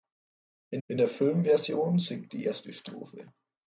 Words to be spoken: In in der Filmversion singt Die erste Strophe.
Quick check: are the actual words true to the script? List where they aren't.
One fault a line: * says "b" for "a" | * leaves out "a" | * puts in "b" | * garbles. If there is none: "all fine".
all fine